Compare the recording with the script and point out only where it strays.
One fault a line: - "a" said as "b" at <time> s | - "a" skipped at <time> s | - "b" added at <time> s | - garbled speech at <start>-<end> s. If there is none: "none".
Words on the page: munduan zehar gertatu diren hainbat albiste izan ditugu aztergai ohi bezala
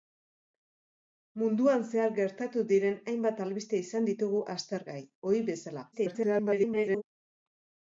- garbled speech at 5.9-7.0 s